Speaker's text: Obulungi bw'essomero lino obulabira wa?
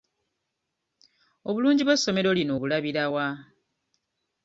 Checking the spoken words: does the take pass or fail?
pass